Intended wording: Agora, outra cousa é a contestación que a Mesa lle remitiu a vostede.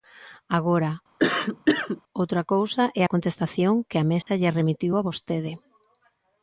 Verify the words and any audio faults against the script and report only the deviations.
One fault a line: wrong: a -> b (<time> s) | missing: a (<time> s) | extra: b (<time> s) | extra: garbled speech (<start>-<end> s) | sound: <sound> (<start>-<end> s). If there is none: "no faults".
sound: cough (1.2-2.0 s)
sound: dropout (4.2-4.3 s)